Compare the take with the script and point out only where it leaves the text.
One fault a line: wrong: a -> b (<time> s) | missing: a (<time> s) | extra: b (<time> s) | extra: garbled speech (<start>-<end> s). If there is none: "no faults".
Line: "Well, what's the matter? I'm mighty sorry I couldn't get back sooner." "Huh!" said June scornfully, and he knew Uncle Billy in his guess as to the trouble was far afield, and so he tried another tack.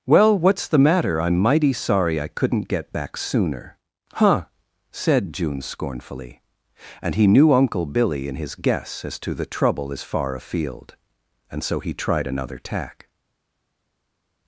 wrong: was -> is (9.9 s)